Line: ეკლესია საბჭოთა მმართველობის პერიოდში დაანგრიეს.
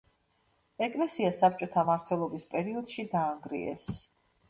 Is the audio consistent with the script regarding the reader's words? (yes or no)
yes